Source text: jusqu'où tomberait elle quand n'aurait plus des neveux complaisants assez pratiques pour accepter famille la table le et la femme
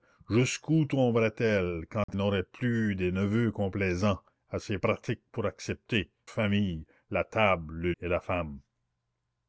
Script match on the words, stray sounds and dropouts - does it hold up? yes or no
no